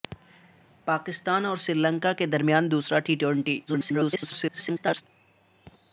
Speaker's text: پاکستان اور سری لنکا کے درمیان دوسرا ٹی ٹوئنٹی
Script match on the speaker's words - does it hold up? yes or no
no